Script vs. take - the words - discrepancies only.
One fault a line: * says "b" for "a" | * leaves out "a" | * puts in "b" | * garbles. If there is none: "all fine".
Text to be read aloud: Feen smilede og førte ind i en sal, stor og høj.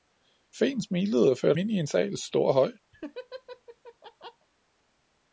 all fine